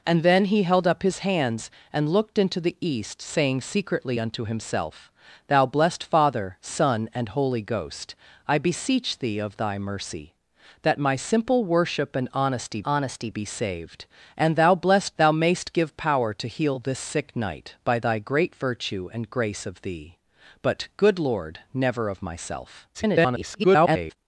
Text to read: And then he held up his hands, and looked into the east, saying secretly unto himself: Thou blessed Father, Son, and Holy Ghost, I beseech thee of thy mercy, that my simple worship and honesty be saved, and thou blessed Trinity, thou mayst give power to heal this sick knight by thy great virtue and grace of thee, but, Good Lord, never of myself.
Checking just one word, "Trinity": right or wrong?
wrong